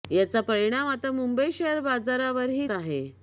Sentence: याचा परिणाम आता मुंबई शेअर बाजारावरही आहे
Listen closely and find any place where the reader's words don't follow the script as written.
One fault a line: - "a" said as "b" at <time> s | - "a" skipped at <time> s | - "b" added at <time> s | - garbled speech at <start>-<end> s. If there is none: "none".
none